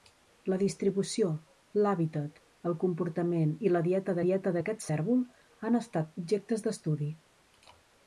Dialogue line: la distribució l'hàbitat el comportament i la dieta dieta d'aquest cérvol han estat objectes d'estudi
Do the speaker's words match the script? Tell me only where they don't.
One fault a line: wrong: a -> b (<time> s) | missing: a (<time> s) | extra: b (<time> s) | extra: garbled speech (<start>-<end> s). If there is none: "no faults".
no faults